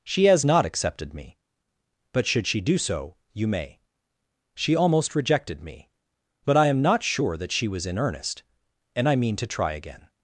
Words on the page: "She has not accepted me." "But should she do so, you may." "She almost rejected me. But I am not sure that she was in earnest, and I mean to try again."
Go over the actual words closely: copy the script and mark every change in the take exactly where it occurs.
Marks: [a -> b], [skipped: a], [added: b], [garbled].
"She has not accepted me." "But should she do so, you may." "She almost rejected me. But I am not sure that she was in earnest, and I mean to try again."